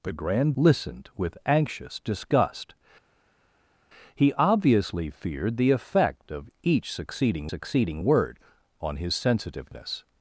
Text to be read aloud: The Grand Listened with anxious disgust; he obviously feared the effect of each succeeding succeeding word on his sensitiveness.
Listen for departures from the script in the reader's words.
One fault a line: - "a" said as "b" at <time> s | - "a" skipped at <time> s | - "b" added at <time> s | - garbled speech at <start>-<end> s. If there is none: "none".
none